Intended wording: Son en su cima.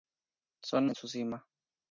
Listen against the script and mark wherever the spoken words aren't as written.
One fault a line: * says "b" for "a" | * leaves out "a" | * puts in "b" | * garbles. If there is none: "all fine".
all fine